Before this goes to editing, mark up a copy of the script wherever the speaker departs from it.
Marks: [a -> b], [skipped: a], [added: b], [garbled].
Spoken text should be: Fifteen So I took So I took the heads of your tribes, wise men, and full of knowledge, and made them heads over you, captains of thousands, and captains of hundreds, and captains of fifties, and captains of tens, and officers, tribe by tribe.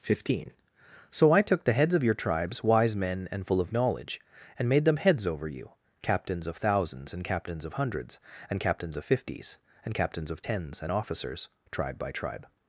Fifteen So I took [skipped: So I took] the heads of your tribes, wise men, and full of knowledge, and made them heads over you, captains of thousands, and captains of hundreds, and captains of fifties, and captains of tens, and officers, tribe by tribe.